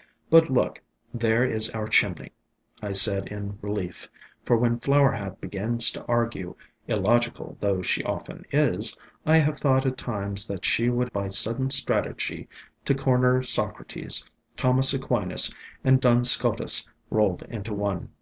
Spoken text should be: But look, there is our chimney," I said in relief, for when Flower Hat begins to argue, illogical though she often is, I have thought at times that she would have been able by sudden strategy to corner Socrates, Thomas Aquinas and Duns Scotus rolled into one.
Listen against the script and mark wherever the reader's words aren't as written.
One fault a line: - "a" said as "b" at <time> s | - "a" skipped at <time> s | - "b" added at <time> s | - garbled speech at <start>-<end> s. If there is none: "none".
- "have been able" skipped at 11.1 s